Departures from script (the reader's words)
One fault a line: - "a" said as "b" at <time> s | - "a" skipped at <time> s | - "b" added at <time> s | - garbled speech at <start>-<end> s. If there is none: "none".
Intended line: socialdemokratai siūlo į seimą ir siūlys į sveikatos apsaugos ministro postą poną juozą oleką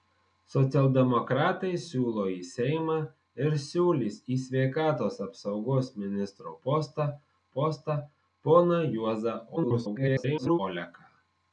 - "postą" added at 7.6 s
- garbled speech at 9.6-10.6 s